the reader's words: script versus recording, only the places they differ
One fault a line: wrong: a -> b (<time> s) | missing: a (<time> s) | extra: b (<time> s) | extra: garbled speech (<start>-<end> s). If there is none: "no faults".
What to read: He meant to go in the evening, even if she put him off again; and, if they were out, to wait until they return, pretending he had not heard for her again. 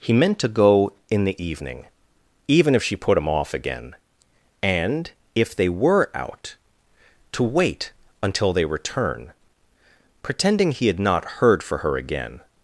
no faults